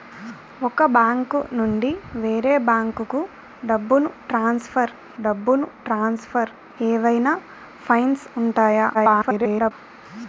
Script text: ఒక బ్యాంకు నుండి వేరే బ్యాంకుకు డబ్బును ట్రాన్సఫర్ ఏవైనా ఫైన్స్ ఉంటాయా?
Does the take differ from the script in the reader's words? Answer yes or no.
yes